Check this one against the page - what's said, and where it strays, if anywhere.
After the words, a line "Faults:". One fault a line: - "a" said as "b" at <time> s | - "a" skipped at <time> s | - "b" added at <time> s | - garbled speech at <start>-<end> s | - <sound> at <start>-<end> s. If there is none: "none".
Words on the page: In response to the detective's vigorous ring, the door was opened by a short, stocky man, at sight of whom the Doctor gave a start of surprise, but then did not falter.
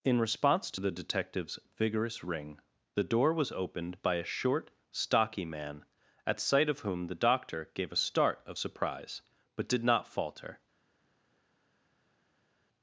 In response to the detective's vigorous ring, the door was opened by a short, stocky man, at sight of whom the Doctor gave a start of surprise, but did not falter.
Faults:
- "then" skipped at 9.7 s